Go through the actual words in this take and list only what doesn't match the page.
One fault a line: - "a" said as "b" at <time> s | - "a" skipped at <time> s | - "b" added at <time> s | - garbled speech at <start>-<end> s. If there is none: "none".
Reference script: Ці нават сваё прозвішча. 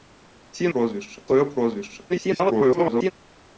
- "нават" said as "прозвішча" at 0.7 s
- garbled speech at 2.1-3.1 s